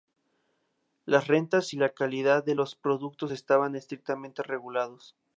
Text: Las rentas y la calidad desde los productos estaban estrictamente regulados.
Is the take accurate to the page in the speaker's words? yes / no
no